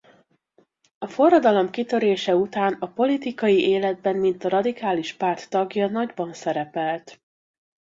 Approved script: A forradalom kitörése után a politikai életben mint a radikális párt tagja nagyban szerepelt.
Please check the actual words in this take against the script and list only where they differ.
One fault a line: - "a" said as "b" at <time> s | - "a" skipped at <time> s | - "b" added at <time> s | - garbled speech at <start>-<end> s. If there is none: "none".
none